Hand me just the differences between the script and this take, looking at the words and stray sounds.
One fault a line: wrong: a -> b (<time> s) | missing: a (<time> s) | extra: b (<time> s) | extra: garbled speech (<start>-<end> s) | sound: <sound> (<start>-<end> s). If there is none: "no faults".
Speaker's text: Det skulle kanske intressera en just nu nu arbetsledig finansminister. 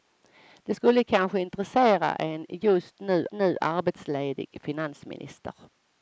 no faults